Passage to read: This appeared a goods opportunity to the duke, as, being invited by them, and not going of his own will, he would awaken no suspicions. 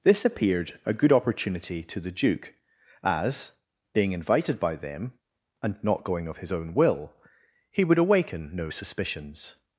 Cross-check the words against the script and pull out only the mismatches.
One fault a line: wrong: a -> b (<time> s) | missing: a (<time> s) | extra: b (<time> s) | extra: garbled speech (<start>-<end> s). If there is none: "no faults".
wrong: goods -> good (0.9 s)